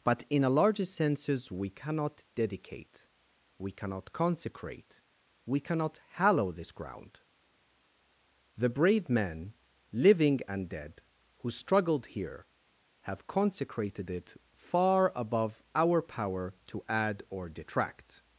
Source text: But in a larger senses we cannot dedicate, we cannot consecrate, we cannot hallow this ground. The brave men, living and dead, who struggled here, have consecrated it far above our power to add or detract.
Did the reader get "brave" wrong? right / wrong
right